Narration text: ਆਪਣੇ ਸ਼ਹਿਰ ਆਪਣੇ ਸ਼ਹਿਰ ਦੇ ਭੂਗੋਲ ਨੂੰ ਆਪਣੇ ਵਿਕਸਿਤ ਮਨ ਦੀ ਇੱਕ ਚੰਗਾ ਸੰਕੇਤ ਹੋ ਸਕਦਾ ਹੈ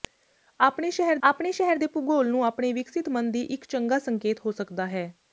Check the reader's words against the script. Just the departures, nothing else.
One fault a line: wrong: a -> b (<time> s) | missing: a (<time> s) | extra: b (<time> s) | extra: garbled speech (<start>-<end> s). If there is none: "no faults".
no faults